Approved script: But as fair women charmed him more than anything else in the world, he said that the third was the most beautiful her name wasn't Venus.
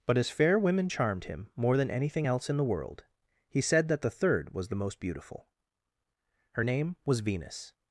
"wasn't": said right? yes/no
no